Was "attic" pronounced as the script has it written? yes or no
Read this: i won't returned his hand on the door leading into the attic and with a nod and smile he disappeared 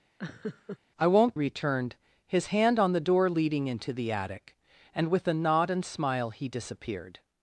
yes